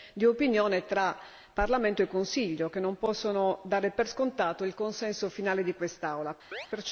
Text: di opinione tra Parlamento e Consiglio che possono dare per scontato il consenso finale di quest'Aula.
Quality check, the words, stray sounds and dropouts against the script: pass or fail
fail